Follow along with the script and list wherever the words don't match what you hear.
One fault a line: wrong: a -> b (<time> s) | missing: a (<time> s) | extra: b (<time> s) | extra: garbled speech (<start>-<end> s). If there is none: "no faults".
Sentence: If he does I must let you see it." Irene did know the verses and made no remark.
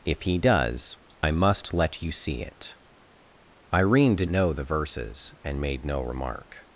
no faults